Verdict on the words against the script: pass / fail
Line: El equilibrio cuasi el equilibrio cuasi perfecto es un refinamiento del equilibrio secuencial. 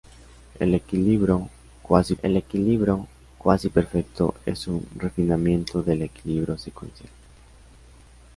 pass